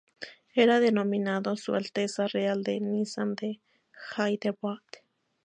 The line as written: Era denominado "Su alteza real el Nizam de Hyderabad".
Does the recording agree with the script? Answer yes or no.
yes